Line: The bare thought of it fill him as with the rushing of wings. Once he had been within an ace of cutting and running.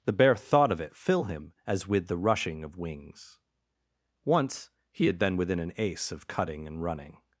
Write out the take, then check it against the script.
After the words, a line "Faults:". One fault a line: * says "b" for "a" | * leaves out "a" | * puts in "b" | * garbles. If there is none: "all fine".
The bare thought of it fill him as with the rushing of wings. Once he had been within an ace of cutting and running.
Faults:
all fine